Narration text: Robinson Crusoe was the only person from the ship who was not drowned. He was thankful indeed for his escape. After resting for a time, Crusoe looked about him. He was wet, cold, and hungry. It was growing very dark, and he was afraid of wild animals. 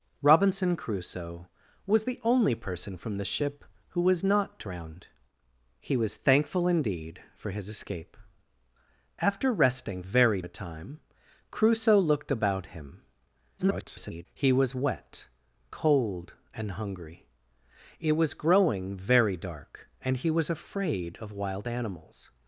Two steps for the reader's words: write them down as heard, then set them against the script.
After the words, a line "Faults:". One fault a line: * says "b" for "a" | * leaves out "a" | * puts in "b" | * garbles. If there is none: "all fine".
Robinson Crusoe was the only person from the ship who was not drowned. He was thankful indeed for his escape. After resting very a time, Crusoe looked about him. [garbled] He was wet, cold, and hungry. It was growing very dark, and he was afraid of wild animals.
Faults:
* says "very" for "for"
* garbles